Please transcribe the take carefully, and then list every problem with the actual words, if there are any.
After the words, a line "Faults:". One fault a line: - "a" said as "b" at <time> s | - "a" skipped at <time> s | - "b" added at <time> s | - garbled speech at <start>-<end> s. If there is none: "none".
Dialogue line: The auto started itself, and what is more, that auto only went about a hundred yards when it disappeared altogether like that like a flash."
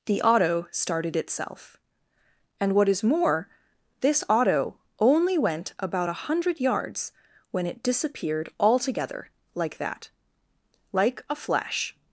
The auto started itself, and what is more, this auto only went about a hundred yards when it disappeared altogether like that like a flash."
Faults:
- "that" said as "this" at 4.0 s